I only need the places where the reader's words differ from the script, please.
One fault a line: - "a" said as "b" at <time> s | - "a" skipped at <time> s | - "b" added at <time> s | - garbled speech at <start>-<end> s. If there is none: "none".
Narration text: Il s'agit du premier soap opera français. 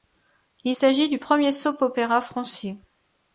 none